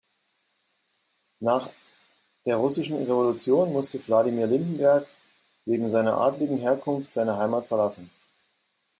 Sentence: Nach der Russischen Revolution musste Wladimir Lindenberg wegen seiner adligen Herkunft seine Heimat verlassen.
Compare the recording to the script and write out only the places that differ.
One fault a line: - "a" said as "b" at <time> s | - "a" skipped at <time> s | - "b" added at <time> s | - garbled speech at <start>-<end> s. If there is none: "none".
none